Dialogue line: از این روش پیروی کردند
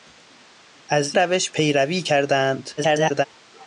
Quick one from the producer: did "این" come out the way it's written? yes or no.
no